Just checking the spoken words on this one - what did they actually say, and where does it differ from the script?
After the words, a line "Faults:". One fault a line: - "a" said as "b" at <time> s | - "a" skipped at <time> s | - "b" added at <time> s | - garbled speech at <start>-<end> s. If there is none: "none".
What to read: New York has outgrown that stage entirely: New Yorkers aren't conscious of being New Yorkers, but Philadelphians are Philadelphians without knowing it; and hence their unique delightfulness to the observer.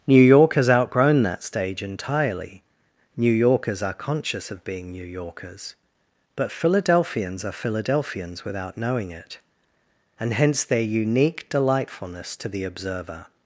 New York has outgrown that stage entirely: New Yorkers are conscious of being New Yorkers, but Philadelphians are Philadelphians without knowing it; and hence their unique delightfulness to the observer.
Faults:
- "aren't" said as "are" at 3.8 s